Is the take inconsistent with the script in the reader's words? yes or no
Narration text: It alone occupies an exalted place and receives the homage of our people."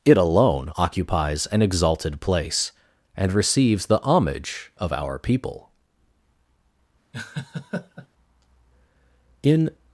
yes